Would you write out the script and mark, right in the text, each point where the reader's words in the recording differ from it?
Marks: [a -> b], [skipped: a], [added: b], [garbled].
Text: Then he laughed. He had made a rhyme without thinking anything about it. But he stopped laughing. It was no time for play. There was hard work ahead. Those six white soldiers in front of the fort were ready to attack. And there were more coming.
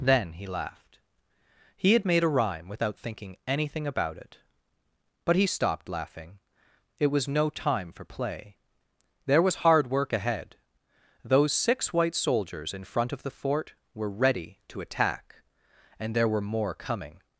Then he laughed. He had made a rhyme without thinking anything about it. But he stopped laughing. It was no time for play. There was hard work ahead. Those six white soldiers in front of the fort were ready to attack. And there were more coming.